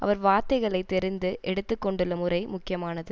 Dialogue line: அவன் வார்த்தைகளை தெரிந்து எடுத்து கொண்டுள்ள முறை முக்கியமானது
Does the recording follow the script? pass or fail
fail